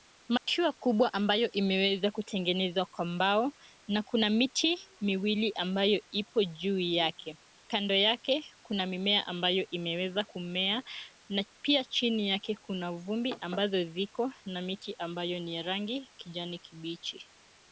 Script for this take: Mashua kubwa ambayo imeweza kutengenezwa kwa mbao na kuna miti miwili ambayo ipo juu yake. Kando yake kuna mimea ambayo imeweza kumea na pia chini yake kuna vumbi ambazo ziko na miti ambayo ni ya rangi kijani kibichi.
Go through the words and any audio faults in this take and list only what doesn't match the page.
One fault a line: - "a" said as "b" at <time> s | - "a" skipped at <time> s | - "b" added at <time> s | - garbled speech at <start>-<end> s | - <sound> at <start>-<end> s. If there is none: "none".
- dropout at 0.4-0.5 s